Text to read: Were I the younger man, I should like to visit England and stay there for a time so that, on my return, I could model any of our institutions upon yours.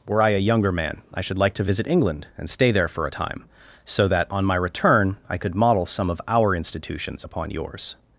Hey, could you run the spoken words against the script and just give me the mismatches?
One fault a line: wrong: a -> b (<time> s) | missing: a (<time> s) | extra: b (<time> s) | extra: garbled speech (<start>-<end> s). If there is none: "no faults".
wrong: the -> a (0.3 s)
wrong: any -> some (5.9 s)